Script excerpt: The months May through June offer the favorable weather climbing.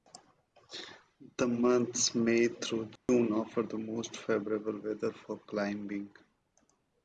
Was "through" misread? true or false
false